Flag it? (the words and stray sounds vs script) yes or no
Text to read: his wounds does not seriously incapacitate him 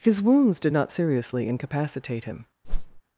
yes